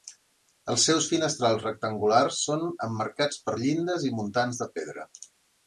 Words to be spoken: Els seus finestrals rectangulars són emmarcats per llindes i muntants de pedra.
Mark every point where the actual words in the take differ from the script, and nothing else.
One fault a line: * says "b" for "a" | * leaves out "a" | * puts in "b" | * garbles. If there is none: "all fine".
all fine